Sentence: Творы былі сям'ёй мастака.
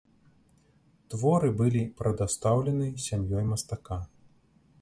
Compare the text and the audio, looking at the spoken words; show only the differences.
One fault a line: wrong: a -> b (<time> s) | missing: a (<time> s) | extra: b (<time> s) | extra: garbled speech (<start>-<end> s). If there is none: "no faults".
extra: прадастаўлены (2.0 s)